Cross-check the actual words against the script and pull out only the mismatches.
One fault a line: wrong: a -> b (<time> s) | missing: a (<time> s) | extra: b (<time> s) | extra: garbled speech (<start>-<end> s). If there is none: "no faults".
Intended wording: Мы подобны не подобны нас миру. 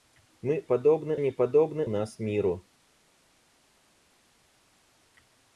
no faults